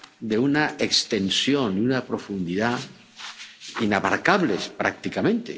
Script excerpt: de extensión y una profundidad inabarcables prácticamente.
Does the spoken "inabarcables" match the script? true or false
true